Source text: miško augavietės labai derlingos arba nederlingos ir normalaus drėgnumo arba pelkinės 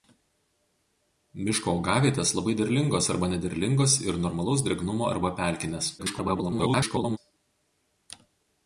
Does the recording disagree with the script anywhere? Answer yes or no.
yes